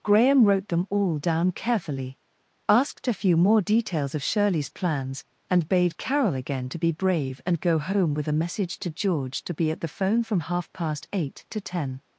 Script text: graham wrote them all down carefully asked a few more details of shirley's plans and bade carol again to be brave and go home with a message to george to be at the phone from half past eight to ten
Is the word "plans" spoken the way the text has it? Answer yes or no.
yes